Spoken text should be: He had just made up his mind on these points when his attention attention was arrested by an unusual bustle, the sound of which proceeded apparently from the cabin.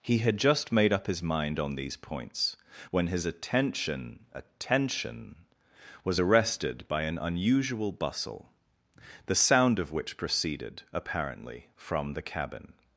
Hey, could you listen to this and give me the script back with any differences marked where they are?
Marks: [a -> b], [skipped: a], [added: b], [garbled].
He had just made up his mind on these points when his attention attention was arrested by an unusual bustle, the sound of which proceeded apparently from the cabin.